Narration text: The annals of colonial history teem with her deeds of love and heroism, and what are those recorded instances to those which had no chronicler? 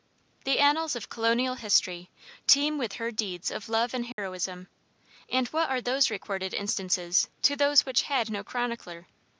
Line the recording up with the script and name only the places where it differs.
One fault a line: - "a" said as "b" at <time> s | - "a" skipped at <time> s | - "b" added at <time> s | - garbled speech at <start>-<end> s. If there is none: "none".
none